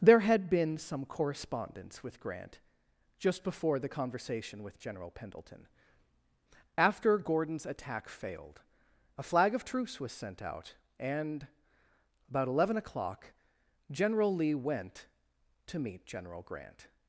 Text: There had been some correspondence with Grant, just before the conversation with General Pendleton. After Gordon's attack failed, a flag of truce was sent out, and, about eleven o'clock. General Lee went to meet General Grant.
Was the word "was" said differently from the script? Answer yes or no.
no